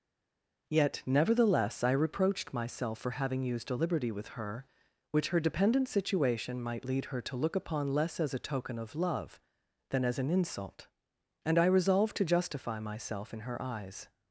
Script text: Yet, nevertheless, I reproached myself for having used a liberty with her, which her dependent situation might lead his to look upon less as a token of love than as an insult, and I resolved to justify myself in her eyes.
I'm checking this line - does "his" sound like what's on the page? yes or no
no